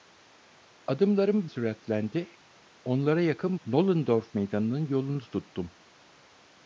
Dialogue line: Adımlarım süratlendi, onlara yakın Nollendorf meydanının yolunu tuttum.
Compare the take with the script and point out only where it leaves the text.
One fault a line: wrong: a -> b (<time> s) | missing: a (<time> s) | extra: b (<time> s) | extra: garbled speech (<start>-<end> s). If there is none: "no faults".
no faults